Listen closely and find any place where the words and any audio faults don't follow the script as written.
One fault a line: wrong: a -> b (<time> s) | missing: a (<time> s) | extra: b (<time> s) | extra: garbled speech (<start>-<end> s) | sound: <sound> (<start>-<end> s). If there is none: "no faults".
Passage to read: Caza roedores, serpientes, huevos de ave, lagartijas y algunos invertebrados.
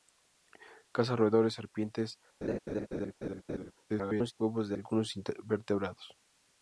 sound: laugh (2.4-3.7 s)
extra: garbled speech (3.9-4.3 s)
missing: ave lagartijas (4.8 s)